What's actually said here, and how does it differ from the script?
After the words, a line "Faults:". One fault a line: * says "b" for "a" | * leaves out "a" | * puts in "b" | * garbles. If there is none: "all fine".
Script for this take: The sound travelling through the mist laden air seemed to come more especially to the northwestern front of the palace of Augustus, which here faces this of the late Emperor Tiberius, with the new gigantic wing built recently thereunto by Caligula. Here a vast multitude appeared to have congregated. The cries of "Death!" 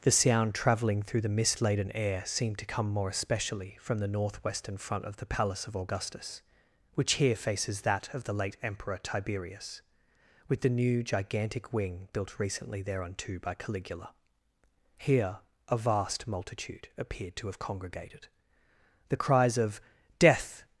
The sound travelling through the mist laden air seemed to come more especially from the northwestern front of the palace of Augustus, which here faces that of the late Emperor Tiberius, with the new gigantic wing built recently thereunto by Caligula. Here a vast multitude appeared to have congregated. The cries of "Death!"
Faults:
* says "from" for "to"
* says "that" for "this"